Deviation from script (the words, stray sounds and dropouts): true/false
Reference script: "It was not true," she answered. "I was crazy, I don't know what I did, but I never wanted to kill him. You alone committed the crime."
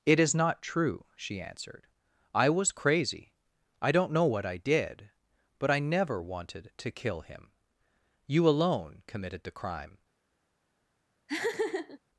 true